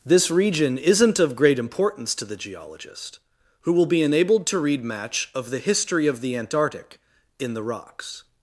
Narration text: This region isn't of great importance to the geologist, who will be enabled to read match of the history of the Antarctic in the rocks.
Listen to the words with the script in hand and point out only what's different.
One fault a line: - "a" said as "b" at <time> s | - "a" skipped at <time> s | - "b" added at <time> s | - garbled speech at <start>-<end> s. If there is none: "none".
none